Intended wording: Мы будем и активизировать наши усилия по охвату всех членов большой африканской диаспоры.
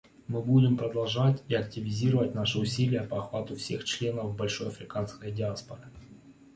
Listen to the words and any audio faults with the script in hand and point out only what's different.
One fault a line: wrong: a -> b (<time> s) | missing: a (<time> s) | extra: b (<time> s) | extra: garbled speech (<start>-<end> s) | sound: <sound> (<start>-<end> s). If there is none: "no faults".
extra: продолжать (0.8 s)